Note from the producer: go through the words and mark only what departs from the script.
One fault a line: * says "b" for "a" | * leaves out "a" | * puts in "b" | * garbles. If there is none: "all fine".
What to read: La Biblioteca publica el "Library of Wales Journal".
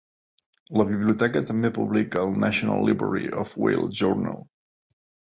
* puts in "també"
* puts in "National"